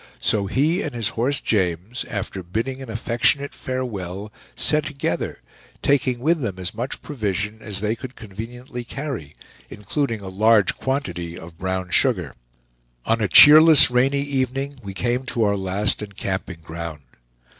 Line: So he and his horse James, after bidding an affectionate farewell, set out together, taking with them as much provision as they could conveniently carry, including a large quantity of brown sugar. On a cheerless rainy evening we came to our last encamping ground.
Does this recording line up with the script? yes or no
no